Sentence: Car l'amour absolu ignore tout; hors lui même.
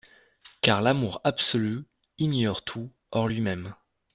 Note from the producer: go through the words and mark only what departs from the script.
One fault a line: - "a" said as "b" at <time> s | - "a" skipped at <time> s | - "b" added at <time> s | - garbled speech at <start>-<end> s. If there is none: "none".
none